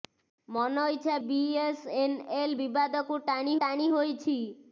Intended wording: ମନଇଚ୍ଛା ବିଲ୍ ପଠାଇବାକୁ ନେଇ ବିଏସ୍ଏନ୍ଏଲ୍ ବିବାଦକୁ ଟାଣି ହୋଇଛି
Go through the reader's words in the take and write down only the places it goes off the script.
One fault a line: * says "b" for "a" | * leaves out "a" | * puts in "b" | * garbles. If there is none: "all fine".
* leaves out "ବିଲ୍ ପଠାଇବାକୁ ନେଇ"
* puts in "ଟାଣି"